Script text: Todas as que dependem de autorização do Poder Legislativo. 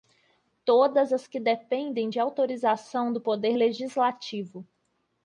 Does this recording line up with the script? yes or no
yes